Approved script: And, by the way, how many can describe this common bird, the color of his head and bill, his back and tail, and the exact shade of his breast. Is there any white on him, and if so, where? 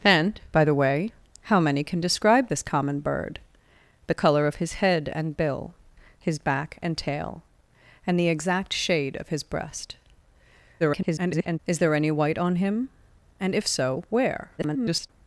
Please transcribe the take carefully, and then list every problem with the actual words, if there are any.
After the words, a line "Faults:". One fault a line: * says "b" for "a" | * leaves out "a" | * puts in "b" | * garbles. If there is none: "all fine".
And, by the way, how many can describe this common bird, the color of his head and bill, his back and tail, and the exact shade of his breast. [garbled] Is there any white on him, and if so, where? [garbled]
Faults:
* garbles
* garbles